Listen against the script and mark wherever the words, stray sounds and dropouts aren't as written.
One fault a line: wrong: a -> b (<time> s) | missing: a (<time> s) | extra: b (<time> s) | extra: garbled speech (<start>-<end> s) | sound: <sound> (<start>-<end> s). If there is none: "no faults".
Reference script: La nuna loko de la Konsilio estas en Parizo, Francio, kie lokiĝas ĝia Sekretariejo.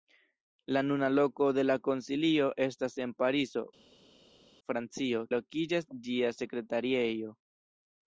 missing: kie (5.2 s)